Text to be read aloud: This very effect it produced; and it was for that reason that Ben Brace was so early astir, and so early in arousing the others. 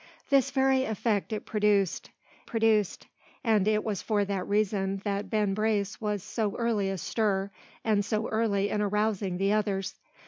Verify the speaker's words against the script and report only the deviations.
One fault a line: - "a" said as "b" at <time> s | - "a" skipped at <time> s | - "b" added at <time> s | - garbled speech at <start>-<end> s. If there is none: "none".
- "produced" added at 2.5 s